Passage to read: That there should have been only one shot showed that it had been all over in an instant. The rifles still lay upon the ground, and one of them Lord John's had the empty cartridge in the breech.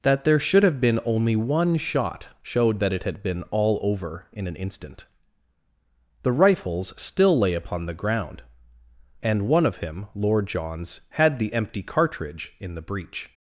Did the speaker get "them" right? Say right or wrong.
wrong